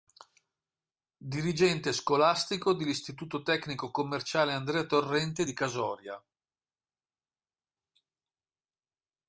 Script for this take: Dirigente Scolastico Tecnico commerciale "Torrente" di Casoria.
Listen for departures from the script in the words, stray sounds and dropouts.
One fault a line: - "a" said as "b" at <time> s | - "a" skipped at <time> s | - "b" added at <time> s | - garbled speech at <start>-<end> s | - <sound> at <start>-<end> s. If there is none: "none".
- "dell'Istituto" added at 2.7 s
- "Andrea" added at 4.5 s